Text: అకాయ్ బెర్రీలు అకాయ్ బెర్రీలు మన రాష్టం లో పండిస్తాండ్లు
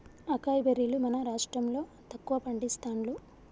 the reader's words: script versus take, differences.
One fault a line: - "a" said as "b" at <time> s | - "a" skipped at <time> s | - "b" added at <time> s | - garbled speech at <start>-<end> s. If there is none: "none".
- "అకాయ్ బెర్రీలు" skipped at 1.0 s
- "తక్కువ" added at 2.1 s